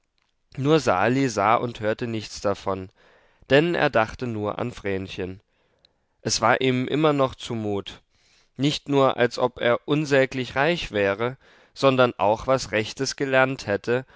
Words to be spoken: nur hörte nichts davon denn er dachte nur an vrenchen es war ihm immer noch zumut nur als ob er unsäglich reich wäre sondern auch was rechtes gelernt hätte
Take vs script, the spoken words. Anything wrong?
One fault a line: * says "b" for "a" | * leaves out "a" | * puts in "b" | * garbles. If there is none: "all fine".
* puts in "sali sah und"
* puts in "nicht"